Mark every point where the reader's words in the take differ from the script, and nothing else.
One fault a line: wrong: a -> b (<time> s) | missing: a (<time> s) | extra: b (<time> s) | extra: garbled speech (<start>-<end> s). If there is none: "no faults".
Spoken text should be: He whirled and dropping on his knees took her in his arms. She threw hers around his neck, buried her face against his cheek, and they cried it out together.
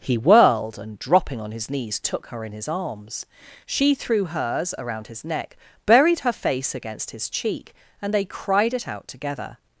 no faults